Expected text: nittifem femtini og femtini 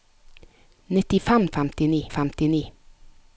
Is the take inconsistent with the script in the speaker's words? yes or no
no